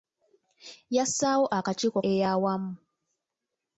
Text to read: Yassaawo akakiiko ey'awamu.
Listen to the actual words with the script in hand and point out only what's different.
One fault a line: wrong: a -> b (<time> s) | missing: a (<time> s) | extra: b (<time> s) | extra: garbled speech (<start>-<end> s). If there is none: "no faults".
no faults